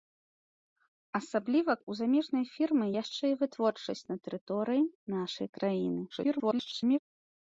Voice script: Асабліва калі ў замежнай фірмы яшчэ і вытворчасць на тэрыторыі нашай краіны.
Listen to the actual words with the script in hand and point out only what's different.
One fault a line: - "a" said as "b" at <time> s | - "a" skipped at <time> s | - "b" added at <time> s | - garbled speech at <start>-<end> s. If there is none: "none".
- "калі" skipped at 1.7 s
- garbled speech at 6.1-7.0 s